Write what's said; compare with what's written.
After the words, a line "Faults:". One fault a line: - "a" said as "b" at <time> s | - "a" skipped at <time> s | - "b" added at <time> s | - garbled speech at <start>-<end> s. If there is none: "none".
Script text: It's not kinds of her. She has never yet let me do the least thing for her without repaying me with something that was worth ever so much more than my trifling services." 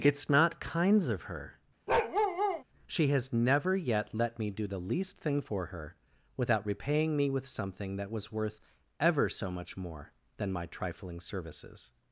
It's not kinds of her. She has never yet let me do the least thing for her without repaying me with something that was worth ever so much more than my trifling services."
Faults:
none